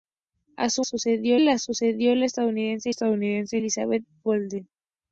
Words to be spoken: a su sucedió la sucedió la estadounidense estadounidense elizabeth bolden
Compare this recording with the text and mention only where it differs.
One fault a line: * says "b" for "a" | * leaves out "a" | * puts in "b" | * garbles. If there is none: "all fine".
all fine